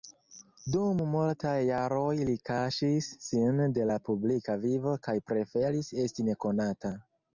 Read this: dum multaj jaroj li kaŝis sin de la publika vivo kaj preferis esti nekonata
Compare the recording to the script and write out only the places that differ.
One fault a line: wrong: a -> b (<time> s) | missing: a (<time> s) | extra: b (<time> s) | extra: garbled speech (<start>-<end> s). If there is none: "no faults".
no faults